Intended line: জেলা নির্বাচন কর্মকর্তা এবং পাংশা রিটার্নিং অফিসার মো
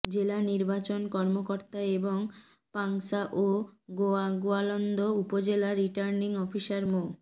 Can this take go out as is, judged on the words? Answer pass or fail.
fail